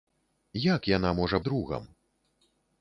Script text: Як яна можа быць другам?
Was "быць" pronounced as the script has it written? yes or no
no